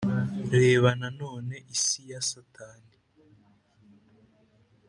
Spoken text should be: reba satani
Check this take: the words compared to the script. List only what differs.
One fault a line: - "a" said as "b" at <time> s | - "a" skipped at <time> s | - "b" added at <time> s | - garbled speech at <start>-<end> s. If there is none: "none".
- "nanone isi ya" added at 1.0 s